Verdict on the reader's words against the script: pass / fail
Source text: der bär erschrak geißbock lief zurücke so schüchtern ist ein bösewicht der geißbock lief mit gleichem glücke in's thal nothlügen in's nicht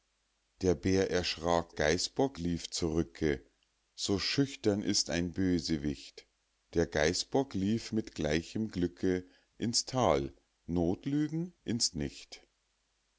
pass